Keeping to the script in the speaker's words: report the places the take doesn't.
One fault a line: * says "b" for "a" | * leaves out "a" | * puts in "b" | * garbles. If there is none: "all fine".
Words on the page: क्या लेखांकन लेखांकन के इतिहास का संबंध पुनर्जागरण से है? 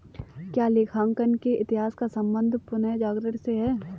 * leaves out "लेखांकन"